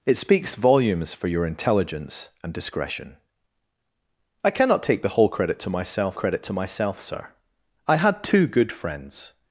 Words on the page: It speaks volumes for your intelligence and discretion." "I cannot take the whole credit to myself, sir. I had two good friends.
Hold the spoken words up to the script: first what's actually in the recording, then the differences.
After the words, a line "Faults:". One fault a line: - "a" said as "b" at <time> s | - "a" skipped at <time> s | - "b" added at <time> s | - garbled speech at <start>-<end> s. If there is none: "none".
It speaks volumes for your intelligence and discretion." "I cannot take the whole credit to myself credit to myself, sir. I had two good friends.
Faults:
- "credit to myself" added at 6.1 s